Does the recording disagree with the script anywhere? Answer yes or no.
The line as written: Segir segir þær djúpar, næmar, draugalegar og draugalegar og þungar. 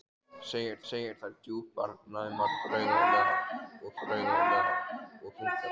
no